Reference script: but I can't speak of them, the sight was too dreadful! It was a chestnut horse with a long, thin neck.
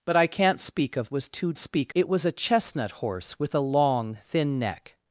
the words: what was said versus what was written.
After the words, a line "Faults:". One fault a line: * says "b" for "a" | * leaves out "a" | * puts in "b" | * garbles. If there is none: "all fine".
but I can't speak of was too speak! It was a chestnut horse with a long, thin neck.
Faults:
* leaves out "them the sight"
* says "speak" for "dreadful"